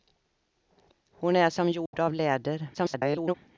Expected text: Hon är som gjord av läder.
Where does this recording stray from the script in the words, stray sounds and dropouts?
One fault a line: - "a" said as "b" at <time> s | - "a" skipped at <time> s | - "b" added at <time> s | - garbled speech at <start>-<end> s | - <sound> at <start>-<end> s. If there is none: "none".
- dropout at 1.9-1.9 s
- garbled speech at 2.7-3.3 s